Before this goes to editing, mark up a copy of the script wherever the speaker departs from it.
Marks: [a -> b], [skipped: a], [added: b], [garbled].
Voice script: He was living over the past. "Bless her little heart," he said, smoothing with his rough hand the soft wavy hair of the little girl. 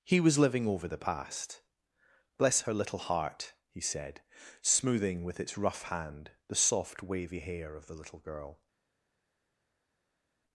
He was living over the past. "Bless her little heart," he said, smoothing with [his -> its] rough hand the soft wavy hair of the little girl.